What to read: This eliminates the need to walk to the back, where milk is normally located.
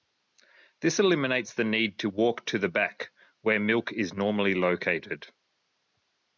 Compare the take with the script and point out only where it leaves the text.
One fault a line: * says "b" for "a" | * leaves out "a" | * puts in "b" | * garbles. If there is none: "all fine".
all fine